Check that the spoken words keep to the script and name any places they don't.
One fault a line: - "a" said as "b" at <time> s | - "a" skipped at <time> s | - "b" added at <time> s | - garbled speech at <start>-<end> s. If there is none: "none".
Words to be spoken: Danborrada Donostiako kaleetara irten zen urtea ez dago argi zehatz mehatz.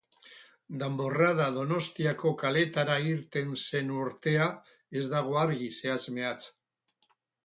none